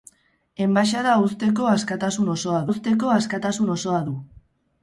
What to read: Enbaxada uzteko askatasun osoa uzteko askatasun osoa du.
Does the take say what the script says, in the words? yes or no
yes